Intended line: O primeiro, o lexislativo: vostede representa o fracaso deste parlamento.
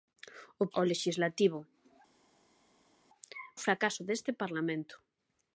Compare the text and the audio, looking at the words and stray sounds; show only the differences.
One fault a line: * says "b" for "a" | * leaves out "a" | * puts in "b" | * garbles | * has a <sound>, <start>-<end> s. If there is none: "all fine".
* leaves out "primeiro"
* leaves out "vostede representa"